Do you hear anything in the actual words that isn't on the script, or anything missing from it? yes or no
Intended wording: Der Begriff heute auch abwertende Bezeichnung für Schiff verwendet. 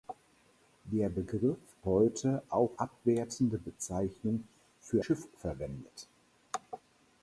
no